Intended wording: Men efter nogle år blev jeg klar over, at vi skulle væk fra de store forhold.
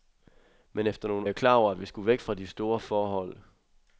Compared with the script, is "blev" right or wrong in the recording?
wrong